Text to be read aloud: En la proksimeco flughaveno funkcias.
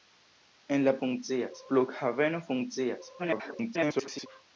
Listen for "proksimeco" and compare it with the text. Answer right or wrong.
wrong